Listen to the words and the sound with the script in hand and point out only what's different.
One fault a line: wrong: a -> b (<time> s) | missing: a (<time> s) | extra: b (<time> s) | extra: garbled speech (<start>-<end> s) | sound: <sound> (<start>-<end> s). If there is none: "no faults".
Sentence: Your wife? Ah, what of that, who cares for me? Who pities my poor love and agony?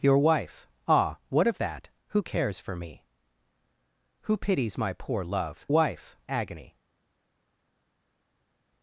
wrong: and -> wife (5.7 s)